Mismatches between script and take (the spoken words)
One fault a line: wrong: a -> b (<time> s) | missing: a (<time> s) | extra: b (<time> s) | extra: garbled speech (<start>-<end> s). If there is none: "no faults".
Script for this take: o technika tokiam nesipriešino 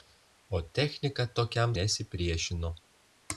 no faults